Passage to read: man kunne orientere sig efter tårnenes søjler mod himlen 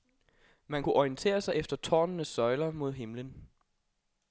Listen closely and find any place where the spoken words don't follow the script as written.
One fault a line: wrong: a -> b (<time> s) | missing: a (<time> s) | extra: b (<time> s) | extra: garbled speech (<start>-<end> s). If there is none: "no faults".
no faults